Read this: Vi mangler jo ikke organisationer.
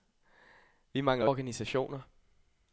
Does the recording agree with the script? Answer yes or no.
no